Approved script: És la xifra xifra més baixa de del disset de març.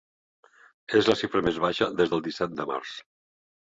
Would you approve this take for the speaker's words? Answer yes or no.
no